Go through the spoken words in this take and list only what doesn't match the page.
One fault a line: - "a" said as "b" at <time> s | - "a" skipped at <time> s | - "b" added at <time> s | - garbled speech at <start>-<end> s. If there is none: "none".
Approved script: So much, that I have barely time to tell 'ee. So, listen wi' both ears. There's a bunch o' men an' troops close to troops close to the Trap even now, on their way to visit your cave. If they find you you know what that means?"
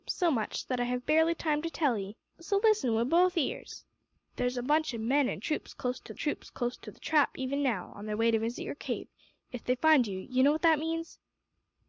none